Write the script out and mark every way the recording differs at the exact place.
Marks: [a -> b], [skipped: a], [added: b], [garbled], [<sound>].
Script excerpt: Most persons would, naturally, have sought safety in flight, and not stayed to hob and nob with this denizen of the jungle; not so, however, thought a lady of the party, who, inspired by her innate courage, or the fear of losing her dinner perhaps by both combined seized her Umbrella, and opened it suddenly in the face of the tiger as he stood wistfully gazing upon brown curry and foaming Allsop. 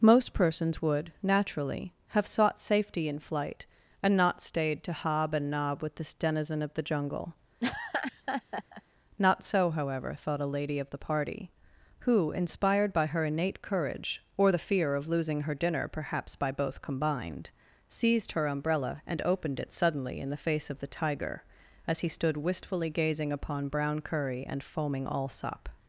Most persons would, naturally, have sought safety in flight, and not stayed to hob and nob with this denizen of the jungle; [laugh] not so, however, thought a lady of the party, who, inspired by her innate courage, or the fear of losing her dinner perhaps by both combined seized her Umbrella, and opened it suddenly in the face of the tiger as he stood wistfully gazing upon brown curry and foaming Allsop.